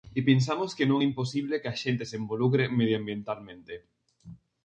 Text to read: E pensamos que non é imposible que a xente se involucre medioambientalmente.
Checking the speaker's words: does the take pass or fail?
pass